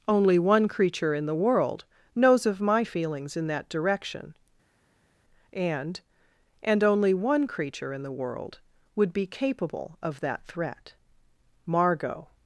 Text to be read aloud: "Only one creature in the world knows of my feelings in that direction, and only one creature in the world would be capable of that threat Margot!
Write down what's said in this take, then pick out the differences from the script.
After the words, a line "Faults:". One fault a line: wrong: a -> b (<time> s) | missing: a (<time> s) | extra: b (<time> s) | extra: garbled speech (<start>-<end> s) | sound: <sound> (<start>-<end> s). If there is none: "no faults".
"Only one creature in the world knows of my feelings in that direction, and and only one creature in the world would be capable of that threat Margot!
Faults:
extra: and (6.6 s)